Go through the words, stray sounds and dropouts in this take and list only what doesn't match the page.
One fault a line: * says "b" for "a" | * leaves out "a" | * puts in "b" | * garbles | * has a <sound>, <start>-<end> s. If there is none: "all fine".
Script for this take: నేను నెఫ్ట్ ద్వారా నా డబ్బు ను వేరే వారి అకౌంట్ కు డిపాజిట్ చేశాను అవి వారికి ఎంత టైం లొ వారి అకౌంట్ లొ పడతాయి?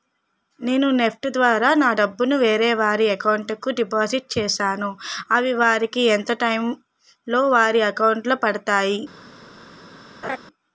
* has a laugh, 10.2-10.4 s